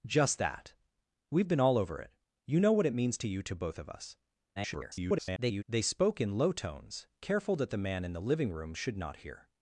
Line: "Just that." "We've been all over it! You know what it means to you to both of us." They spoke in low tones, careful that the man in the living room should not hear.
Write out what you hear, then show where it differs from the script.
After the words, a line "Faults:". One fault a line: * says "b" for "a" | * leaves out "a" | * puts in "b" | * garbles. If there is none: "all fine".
"Just that." "We've been all over it! You know what it means to you to both of us." [garbled] They spoke in low tones, careful that the man in the living room should not hear.
Faults:
* garbles